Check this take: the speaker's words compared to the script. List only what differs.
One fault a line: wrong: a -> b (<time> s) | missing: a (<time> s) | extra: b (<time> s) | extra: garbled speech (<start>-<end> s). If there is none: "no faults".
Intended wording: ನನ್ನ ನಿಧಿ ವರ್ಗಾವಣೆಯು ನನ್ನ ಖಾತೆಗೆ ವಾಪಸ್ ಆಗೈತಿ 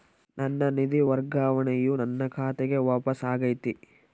no faults